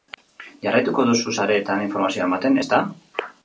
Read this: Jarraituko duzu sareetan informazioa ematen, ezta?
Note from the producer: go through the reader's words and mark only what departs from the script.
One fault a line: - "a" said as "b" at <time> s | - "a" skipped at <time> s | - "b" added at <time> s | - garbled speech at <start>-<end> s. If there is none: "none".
none